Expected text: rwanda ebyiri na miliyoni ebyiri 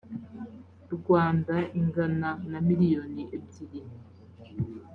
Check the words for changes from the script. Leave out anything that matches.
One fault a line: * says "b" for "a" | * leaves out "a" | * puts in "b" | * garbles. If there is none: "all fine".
* says "ingana" for "ebyiri"